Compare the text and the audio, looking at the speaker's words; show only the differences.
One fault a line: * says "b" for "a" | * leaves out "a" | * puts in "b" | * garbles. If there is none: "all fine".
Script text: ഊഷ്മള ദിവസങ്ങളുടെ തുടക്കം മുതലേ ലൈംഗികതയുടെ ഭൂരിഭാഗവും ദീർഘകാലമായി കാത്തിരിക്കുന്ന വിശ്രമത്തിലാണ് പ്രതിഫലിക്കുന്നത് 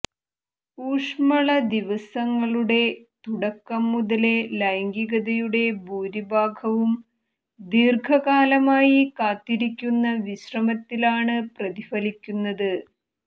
all fine